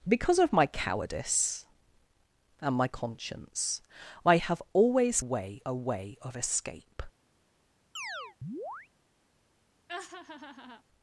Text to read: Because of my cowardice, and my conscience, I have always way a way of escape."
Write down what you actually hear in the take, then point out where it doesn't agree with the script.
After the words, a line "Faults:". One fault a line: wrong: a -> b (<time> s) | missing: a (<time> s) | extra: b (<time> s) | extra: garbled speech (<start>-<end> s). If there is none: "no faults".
Because of my cowardice, and my conscience, I have always way a way of escape."
Faults:
no faults